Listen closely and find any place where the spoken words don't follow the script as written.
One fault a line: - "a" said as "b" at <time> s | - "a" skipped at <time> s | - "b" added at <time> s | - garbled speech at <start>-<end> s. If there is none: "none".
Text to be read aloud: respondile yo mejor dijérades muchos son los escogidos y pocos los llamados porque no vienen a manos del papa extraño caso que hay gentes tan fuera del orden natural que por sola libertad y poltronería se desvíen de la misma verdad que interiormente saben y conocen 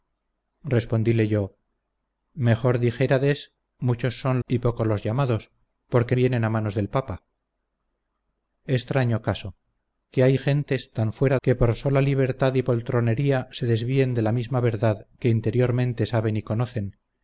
- "los escogidos" skipped at 4.4 s
- "no" skipped at 6.1 s
- "del orden natural" skipped at 11.4 s